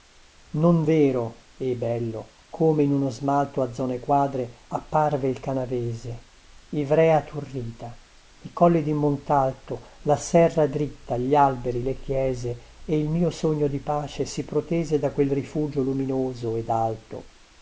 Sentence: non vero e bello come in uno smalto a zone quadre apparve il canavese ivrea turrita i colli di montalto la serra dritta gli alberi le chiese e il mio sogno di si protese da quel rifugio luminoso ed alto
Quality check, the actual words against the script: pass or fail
fail